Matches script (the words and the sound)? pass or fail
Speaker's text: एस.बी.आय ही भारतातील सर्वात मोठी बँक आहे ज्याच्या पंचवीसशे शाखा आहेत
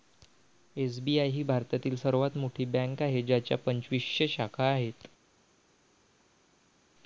pass